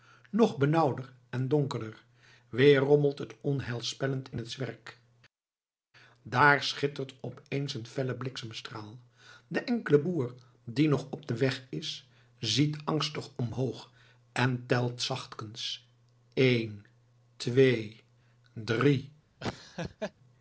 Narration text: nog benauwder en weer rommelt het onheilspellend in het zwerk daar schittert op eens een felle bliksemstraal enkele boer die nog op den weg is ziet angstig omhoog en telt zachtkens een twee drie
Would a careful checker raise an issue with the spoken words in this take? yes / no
yes